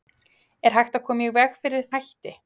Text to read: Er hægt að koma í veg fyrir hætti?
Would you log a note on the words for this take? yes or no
no